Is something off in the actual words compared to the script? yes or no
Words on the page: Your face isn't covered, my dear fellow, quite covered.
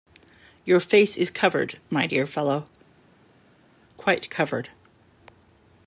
yes